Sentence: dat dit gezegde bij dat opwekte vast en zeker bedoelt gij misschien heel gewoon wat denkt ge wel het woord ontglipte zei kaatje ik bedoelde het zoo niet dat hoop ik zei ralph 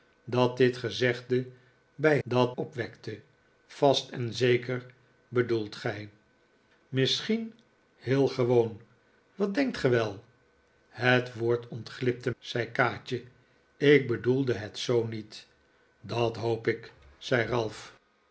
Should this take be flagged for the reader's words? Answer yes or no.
no